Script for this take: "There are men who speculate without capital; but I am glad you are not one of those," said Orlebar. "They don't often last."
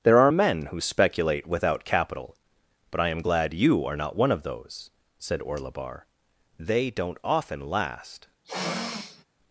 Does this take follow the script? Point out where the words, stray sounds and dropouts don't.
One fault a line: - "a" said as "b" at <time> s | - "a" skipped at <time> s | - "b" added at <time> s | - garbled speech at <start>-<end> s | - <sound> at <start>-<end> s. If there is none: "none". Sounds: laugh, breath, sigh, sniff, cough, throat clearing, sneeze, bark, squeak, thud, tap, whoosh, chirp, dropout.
- sniff at 8.4-9.2 s